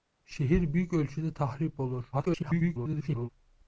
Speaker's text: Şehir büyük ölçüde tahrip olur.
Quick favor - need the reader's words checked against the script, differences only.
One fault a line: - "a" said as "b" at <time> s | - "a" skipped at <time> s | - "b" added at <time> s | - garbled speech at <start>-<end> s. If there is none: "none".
- garbled speech at 2.1-3.3 s